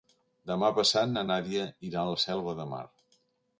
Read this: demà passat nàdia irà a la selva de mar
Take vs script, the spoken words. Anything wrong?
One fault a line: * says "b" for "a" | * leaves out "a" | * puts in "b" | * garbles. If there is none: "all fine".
* puts in "na"